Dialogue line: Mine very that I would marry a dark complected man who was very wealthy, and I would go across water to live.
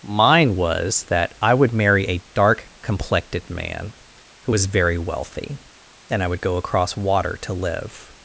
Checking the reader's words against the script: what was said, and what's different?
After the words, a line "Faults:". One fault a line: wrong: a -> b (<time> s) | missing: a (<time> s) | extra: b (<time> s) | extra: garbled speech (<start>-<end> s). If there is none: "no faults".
Mine was that I would marry a dark complected man who was very wealthy, and I would go across water to live.
Faults:
wrong: very -> was (0.6 s)